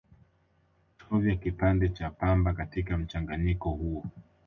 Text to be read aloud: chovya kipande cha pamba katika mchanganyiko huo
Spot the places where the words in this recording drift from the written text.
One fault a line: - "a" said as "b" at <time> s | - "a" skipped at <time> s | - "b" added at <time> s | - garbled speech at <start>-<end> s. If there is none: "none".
none